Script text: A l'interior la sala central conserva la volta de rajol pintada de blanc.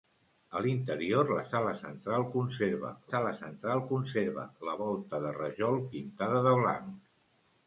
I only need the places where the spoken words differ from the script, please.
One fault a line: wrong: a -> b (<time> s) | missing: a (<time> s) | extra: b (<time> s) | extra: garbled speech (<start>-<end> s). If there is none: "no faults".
extra: sala central conserva (3.1 s)